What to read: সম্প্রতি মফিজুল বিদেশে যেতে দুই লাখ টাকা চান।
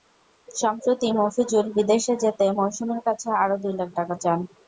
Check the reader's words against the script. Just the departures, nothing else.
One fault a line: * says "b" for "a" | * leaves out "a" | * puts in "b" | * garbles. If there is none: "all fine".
* puts in "মৌসুমীর কাছে আরও"